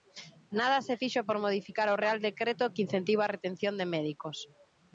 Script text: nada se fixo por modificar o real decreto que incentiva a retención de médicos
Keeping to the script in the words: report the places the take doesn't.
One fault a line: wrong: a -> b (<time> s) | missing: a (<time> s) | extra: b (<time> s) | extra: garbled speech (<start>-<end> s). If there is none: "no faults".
no faults